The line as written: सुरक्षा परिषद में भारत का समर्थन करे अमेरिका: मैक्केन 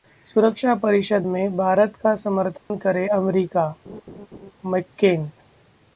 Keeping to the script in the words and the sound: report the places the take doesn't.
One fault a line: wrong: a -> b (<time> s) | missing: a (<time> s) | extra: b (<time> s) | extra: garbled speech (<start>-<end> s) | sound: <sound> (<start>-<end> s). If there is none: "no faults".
sound: dropout (2.6-2.7 s)
sound: laugh (3.9-4.5 s)